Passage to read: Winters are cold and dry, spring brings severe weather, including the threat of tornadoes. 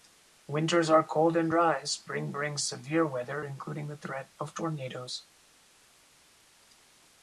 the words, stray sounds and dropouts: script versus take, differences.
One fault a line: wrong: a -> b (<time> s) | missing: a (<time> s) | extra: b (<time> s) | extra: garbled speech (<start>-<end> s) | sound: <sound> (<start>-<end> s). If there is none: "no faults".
no faults